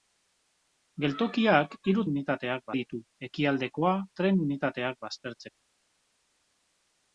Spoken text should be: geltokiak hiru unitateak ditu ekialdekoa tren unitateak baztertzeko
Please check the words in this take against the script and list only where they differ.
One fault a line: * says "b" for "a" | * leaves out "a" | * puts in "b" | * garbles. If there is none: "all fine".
all fine